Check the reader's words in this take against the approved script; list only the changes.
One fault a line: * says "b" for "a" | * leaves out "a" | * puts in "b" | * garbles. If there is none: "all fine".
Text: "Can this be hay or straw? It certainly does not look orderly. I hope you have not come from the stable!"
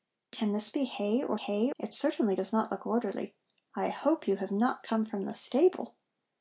* says "hay" for "straw"